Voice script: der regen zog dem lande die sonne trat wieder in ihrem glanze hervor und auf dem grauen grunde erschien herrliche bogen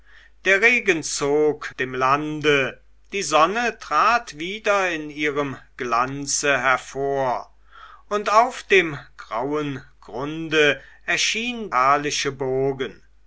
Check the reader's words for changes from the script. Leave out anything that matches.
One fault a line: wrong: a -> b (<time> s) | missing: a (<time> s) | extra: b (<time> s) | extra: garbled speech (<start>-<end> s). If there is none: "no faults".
no faults